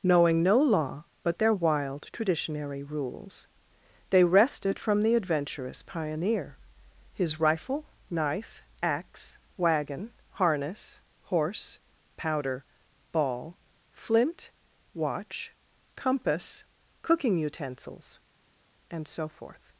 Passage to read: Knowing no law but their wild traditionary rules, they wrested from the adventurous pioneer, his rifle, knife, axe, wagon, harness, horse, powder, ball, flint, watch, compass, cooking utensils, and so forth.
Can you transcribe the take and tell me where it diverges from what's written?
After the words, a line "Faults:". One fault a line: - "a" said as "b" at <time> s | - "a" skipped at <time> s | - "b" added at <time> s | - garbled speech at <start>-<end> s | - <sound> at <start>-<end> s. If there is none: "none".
Knowing no law but their wild traditionary rules, they wrested from the adventurous pioneer, his rifle, knife, axe, wagon, harness, horse, powder, ball, flint, watch, compass, cooking utensils, and so forth.
Faults:
none